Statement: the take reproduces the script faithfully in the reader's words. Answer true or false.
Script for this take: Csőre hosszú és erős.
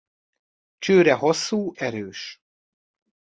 false